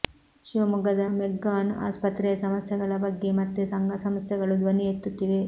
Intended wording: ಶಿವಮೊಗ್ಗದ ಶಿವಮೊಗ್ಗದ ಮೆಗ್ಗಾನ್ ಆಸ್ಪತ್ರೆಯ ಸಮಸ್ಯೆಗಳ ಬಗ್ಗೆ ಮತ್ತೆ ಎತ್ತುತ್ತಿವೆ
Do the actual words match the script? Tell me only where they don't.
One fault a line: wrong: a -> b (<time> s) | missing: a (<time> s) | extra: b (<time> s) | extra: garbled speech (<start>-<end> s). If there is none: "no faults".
missing: ಶಿವಮೊಗ್ಗದ (1.0 s)
extra: ಸಂಘ ಸಂಸ್ಥೆಗಳು ಧ್ವನಿ (3.7 s)